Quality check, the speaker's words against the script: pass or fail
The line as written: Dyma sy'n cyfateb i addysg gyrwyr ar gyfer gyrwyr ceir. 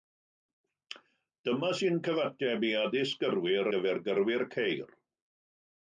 fail